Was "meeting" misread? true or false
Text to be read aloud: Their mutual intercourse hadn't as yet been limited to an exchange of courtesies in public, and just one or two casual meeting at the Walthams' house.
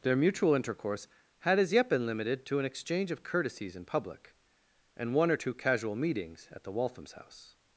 true